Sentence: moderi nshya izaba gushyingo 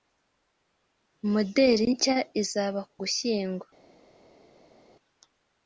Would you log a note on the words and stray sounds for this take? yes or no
no